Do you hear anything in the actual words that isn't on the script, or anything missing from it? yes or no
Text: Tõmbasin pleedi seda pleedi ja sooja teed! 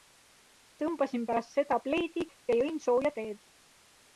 yes